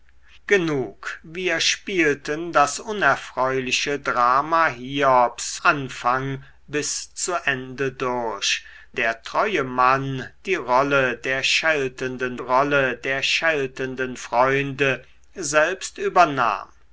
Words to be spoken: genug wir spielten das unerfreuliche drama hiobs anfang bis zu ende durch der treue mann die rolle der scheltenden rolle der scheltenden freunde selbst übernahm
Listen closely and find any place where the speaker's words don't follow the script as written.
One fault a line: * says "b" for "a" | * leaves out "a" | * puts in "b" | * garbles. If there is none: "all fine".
all fine